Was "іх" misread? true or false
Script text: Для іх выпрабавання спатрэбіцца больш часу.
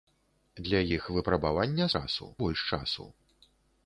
false